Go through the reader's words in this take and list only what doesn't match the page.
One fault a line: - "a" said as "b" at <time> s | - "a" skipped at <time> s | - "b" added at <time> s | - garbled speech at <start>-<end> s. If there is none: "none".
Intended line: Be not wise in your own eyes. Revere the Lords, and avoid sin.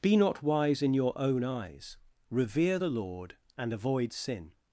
- "Lords" said as "Lord" at 2.9 s